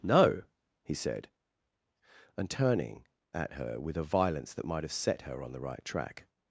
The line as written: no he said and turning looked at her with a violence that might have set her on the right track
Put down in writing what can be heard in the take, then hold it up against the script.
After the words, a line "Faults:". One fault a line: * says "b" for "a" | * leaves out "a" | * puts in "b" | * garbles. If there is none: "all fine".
no he said and turning at her with a violence that might have set her on the right track
Faults:
* leaves out "looked"